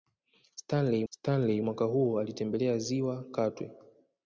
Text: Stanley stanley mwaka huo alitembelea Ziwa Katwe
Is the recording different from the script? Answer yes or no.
no